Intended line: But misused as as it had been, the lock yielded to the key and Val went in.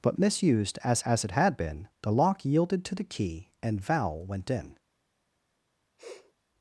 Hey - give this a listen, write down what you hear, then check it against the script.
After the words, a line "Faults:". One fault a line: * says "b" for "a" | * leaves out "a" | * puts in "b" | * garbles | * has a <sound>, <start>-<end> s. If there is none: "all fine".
But misused as as it had been, the lock yielded to the key and Val went in.
Faults:
* has a sniff, 6.0-6.3 s